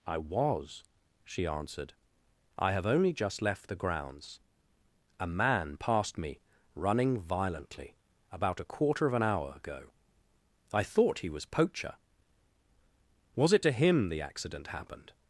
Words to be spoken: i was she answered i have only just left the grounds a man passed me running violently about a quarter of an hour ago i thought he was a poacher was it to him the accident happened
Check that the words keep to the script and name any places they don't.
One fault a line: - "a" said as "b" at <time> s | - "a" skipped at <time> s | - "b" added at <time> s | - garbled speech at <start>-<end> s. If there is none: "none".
- "a" skipped at 11.5 s